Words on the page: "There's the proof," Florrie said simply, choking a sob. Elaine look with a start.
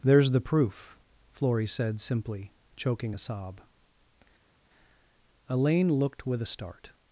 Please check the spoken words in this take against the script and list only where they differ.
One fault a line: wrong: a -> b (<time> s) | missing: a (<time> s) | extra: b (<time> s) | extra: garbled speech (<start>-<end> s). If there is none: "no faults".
wrong: look -> looked (5.9 s)